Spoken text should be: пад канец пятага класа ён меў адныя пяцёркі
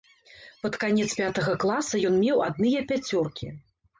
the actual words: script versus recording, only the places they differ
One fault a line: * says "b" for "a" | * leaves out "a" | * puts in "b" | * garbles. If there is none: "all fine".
all fine